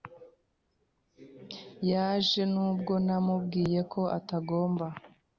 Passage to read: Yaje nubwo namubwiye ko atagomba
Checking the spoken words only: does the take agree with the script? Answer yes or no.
yes